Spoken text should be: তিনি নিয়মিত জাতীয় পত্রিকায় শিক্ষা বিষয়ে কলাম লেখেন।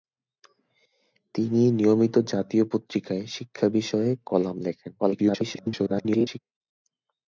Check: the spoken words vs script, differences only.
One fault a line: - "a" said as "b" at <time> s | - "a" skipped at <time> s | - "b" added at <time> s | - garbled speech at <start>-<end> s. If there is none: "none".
- garbled speech at 5.0-6.4 s